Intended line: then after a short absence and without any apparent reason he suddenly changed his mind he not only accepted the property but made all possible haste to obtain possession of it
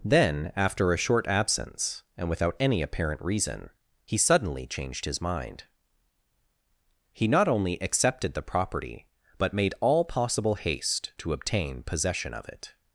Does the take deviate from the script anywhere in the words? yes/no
no